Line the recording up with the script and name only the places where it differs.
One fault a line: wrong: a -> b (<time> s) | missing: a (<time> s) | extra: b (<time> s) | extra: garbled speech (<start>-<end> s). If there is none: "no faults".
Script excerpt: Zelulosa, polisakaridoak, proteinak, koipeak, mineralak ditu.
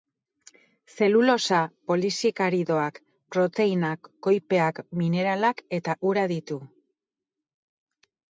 extra: eta ura (5.8 s)